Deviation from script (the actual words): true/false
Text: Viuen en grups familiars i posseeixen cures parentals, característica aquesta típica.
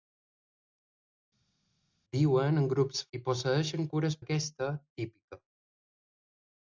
true